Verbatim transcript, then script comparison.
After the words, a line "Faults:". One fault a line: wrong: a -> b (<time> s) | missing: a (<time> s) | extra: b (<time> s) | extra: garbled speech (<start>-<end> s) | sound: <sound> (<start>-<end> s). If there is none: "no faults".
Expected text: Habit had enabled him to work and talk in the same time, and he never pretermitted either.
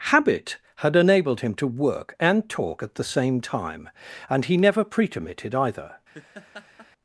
Habit had enabled him to work and talk at the same time, and he never pretermitted either.
Faults:
wrong: in -> at (2.8 s)
sound: laugh (6.1-6.9 s)